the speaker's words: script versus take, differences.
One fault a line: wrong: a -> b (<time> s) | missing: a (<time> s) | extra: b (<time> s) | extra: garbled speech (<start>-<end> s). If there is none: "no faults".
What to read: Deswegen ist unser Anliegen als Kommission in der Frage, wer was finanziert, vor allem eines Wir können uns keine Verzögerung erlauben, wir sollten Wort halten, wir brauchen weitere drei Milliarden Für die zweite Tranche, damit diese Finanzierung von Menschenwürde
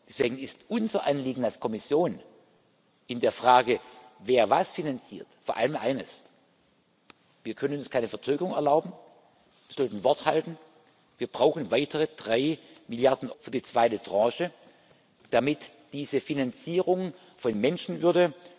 no faults